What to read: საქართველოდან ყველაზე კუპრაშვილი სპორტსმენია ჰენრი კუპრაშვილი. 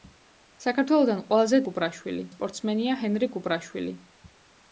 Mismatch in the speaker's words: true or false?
false